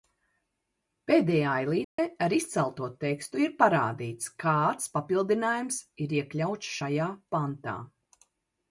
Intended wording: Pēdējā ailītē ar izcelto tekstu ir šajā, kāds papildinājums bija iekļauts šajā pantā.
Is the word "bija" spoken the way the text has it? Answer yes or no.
no